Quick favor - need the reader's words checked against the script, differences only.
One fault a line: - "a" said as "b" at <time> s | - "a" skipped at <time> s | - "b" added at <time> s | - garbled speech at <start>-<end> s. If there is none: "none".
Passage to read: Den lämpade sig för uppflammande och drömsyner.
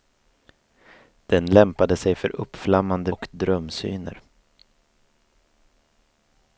none